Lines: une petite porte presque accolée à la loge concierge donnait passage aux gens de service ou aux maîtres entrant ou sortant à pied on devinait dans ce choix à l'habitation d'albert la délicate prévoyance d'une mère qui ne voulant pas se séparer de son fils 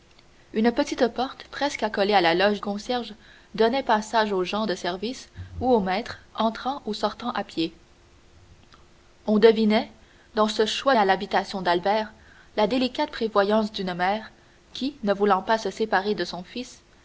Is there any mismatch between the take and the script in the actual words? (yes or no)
no